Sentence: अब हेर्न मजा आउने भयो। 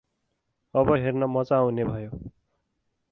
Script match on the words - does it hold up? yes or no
yes